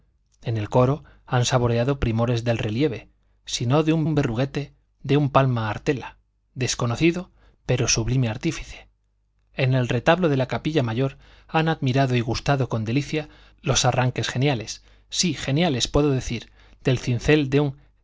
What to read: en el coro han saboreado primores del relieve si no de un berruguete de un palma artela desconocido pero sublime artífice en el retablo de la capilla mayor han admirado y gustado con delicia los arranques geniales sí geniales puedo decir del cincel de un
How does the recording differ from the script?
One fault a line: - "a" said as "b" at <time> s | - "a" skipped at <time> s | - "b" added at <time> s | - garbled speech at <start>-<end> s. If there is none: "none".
- "un" added at 4.0 s